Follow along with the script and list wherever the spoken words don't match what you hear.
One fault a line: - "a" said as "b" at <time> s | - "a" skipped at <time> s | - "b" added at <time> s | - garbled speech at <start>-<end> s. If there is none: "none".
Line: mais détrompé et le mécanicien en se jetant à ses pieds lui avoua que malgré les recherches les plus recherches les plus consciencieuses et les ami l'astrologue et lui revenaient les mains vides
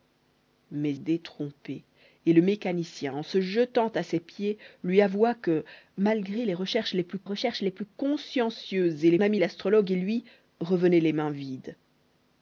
none